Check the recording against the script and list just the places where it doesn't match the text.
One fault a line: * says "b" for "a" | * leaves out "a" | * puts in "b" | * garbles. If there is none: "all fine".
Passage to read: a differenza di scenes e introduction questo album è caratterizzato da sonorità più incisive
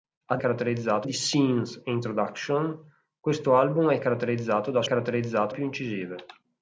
* says "caratterizzato" for "differenza"
* says "caratterizzato" for "sonorità"